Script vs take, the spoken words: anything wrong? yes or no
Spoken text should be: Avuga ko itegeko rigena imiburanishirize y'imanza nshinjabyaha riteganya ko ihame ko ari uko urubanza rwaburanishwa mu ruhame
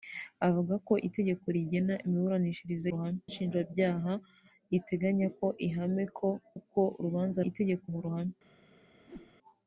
yes